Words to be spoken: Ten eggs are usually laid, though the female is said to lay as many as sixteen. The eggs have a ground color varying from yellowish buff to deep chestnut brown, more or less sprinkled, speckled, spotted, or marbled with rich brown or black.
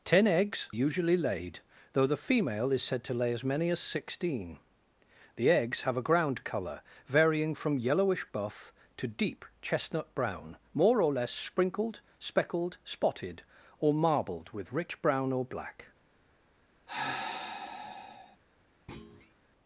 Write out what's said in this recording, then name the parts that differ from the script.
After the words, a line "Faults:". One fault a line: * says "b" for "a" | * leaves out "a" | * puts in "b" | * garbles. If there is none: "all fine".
Ten eggs usually laid, though the female is said to lay as many as sixteen. The eggs have a ground color varying from yellowish buff to deep chestnut brown, more or less sprinkled, speckled, spotted, or marbled with rich brown or black.
Faults:
* leaves out "are"